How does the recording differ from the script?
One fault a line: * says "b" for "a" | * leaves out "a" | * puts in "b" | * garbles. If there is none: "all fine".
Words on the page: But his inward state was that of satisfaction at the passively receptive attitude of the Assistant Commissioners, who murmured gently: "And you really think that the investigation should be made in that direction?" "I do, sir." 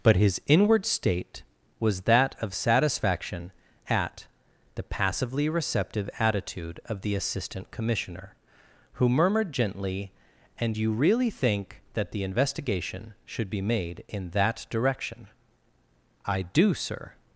* says "Commissioner" for "Commissioners"